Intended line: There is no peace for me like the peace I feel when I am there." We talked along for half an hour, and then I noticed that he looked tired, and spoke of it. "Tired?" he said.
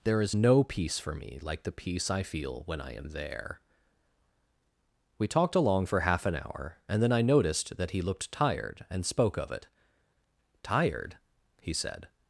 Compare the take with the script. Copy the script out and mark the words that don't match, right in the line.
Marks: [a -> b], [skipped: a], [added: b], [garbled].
There is no peace for me like the peace I feel when I am there." We talked along for half an hour, and then I noticed that he looked tired, and spoke of it. "Tired?" he said.